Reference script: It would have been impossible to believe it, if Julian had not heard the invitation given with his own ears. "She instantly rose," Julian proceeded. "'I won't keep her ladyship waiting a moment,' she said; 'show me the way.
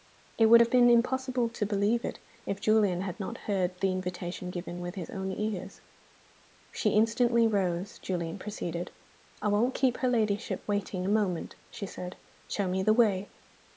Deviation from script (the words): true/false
false